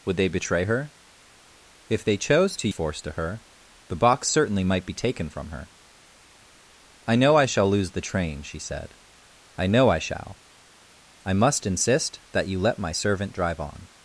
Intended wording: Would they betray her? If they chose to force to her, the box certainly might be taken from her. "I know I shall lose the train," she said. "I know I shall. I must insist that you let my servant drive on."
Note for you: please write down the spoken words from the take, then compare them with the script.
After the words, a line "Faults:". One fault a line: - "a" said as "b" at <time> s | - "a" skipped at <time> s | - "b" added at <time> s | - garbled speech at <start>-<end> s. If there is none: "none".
Would they betray her? If they chose to force to her, the box certainly might be taken from her. "I know I shall lose the train," she said. "I know I shall. I must insist that you let my servant drive on."
Faults:
none